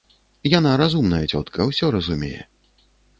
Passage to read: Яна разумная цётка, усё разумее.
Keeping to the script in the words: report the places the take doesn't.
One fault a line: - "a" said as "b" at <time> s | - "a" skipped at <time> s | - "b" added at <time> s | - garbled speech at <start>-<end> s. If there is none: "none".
none